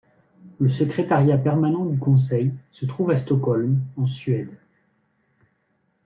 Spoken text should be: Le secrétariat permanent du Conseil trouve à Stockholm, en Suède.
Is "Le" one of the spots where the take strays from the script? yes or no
no